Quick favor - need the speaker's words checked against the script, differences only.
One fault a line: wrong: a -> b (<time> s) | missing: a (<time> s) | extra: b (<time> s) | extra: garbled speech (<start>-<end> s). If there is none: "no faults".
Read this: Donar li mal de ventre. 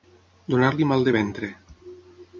no faults